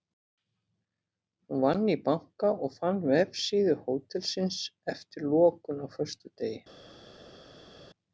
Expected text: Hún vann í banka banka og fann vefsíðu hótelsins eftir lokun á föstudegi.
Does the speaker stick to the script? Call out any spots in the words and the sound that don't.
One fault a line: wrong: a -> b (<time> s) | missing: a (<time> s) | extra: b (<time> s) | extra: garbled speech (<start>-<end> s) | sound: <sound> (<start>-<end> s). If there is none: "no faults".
missing: banka (2.5 s)